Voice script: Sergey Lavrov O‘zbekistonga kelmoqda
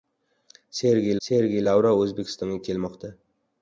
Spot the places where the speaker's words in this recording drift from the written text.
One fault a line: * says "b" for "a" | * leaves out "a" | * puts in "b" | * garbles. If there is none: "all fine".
* puts in "sergey"